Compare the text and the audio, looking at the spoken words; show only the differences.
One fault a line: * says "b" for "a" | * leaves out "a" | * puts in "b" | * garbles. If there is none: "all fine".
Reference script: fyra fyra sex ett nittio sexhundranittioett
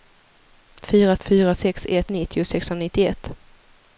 all fine